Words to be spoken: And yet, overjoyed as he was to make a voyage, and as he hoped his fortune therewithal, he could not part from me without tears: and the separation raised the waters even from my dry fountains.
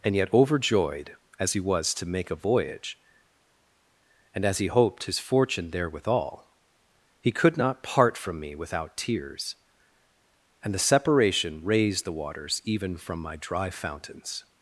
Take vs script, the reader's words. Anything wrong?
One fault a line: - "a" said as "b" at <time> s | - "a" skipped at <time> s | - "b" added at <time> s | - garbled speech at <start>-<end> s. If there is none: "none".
none